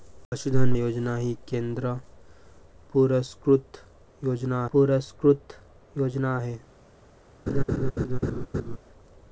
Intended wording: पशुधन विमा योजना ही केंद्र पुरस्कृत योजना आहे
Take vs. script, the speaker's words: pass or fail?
fail